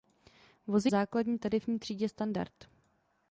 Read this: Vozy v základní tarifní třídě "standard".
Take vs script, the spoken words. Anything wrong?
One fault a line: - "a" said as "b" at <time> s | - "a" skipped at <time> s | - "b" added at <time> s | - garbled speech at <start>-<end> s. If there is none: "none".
none